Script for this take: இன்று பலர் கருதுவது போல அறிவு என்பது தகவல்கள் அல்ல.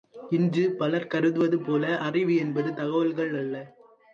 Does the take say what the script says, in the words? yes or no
yes